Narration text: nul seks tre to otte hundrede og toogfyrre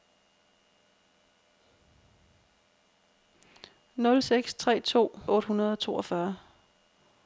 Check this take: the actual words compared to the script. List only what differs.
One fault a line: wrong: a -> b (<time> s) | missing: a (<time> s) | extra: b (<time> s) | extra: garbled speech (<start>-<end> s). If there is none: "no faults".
no faults